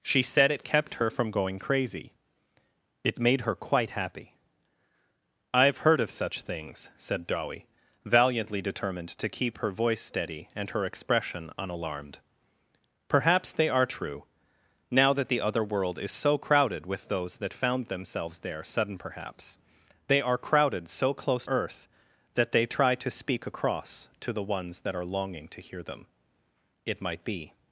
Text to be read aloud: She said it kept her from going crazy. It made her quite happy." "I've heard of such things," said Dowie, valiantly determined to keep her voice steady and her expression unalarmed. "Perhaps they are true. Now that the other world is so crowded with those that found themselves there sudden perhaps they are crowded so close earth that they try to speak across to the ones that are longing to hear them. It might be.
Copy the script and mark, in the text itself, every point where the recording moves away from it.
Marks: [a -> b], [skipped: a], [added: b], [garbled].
She said it kept her from going crazy. It made her quite happy." "I've heard of such things," said Dowie, valiantly determined to keep her voice steady and her expression unalarmed. "Perhaps they are true. Now that the other world is so crowded with those that found themselves there sudden perhaps they are crowded so close earth that they try to speak across to the ones that are longing to hear them. It might be.